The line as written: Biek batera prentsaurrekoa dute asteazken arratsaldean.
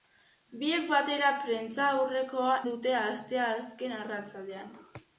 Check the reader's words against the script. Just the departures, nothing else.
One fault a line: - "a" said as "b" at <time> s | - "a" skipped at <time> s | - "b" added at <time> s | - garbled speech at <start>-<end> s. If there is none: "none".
none